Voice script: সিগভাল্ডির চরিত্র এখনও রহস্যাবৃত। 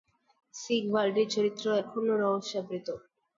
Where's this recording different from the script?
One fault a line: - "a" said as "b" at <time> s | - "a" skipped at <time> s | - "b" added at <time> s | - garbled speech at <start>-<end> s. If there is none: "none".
none